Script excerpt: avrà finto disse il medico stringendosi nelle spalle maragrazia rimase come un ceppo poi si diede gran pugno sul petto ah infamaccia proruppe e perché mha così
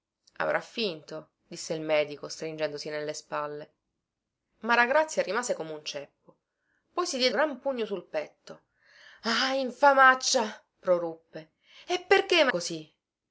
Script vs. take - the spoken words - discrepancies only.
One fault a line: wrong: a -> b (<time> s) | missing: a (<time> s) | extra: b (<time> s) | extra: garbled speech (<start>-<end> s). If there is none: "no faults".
no faults